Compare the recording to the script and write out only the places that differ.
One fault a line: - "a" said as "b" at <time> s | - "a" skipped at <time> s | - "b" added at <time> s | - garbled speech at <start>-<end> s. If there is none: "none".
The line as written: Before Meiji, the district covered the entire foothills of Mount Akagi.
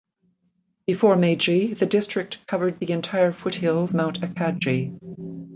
- "of" skipped at 4.0 s